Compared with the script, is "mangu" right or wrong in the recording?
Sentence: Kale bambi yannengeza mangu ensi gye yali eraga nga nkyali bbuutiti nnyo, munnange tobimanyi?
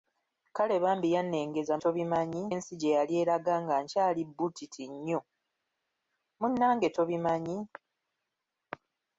wrong